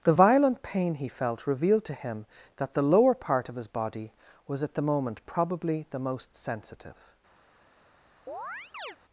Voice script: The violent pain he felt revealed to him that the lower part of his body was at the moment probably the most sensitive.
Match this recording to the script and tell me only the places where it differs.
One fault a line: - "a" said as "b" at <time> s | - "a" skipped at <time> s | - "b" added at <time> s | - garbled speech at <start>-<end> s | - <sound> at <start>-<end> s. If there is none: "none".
- chirp at 8.3-9.0 s